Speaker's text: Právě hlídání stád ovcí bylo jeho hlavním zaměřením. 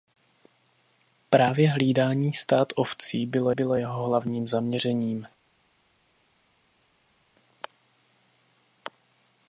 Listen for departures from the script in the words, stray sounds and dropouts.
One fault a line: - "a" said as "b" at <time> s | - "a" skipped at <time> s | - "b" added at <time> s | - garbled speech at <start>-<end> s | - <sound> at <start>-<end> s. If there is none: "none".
- "bylo" added at 3.5 s